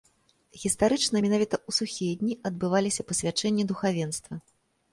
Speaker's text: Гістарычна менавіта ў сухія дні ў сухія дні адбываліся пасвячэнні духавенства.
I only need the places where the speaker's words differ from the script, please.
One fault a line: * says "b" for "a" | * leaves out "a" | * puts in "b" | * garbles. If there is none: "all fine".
* leaves out "ў сухія дні"